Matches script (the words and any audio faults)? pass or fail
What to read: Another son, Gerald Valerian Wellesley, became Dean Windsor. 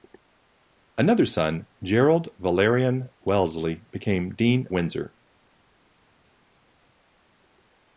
pass